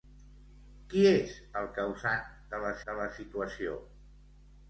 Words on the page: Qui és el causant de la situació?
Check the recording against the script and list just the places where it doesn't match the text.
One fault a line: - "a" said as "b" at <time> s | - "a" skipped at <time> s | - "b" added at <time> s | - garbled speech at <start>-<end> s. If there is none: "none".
- "de la" added at 2.9 s